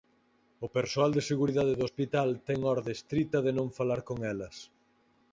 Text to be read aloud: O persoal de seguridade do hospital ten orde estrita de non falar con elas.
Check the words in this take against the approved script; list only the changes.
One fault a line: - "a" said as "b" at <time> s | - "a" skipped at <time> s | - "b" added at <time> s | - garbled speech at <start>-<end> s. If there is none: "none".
none